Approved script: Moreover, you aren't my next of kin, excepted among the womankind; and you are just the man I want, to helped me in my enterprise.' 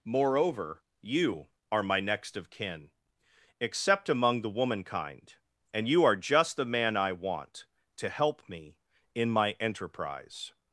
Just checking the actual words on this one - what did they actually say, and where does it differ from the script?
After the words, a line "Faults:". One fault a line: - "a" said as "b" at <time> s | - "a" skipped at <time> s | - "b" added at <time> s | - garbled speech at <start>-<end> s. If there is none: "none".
Moreover, you are my next of kin, except among the womankind; and you are just the man I want, to help me in my enterprise.'
Faults:
- "aren't" said as "are" at 1.7 s
- "excepted" said as "except" at 3.6 s
- "helped" said as "help" at 8.1 s